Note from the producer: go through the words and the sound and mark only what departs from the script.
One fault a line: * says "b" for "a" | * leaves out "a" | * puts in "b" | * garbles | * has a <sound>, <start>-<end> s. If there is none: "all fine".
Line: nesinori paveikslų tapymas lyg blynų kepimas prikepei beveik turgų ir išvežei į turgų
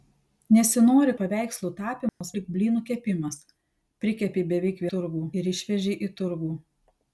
* has a dropout, 2.1-2.2 s